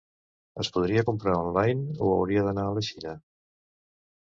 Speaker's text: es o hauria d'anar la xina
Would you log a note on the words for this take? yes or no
yes